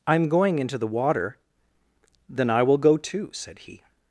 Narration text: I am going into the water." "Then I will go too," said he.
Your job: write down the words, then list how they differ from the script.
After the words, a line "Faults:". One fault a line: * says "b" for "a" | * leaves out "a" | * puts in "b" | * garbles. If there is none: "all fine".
I am going into the water." "Then I will go too," said he.
Faults:
all fine